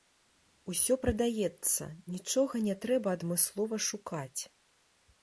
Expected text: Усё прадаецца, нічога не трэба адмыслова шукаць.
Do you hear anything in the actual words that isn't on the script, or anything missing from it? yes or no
no